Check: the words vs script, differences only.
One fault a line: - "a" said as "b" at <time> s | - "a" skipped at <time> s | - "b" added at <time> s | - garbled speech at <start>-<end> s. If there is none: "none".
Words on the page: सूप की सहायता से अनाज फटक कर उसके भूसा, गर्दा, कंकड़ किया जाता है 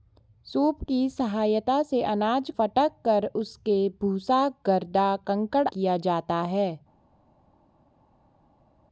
none